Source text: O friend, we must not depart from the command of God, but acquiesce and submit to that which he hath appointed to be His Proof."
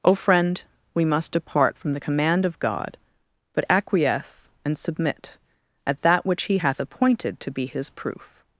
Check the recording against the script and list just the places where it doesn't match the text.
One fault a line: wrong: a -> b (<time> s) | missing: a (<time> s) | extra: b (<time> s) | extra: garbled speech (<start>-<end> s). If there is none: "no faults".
missing: not (1.3 s)
wrong: to -> at (5.9 s)